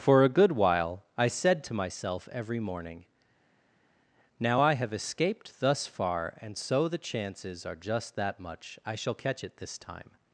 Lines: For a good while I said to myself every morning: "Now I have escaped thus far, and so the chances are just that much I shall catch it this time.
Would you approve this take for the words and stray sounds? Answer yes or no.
yes